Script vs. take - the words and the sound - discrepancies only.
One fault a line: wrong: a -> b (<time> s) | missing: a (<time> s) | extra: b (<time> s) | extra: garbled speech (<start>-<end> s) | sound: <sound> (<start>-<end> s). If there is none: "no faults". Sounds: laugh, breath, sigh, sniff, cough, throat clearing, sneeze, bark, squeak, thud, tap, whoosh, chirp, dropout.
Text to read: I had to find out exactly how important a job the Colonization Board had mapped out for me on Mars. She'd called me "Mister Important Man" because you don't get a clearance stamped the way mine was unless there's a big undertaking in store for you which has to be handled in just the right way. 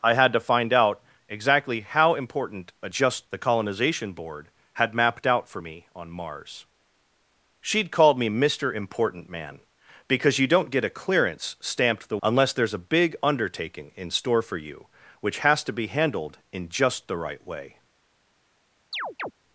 wrong: job -> just (2.9 s)
missing: way mine was (12.2 s)
sound: chirp (18.9-19.3 s)